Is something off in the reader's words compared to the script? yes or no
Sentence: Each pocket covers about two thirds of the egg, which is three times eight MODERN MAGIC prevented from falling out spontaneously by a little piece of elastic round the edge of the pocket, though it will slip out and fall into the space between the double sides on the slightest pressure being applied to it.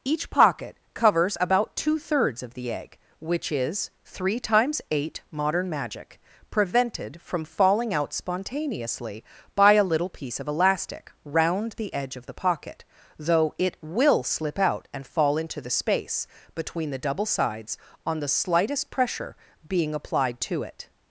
no